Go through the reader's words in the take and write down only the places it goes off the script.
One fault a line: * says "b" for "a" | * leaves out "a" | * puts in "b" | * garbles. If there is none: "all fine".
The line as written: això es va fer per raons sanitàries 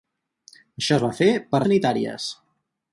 * leaves out "raons"